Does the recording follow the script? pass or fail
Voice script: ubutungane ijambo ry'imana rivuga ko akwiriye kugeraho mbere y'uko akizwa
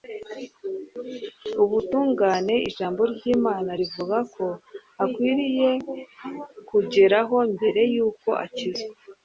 pass